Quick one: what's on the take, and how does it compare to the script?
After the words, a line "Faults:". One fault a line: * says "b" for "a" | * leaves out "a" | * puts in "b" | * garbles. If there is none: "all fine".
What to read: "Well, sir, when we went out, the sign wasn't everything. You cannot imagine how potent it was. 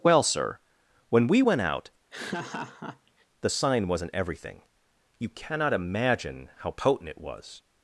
"Well, sir, when we went out, the sign wasn't everything. You cannot imagine how potent it was.
Faults:
all fine